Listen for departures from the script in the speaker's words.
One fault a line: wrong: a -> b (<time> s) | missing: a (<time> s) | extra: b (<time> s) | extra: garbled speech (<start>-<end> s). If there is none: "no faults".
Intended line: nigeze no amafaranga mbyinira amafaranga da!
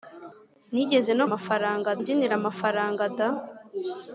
no faults